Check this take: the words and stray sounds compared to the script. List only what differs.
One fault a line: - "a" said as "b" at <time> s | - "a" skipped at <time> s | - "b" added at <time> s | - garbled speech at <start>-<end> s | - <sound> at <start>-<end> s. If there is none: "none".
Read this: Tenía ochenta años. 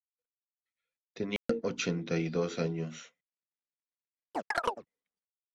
- dropout at 1.4-1.5 s
- "y dos" added at 2.2 s
- chirp at 4.3-4.9 s